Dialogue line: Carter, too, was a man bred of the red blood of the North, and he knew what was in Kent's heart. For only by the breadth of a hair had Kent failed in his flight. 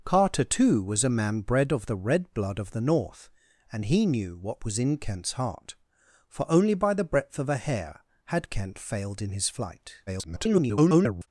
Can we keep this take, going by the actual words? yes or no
no